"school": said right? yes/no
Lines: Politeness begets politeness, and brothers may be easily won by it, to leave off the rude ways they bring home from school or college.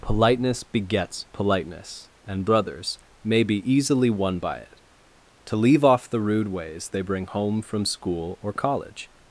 yes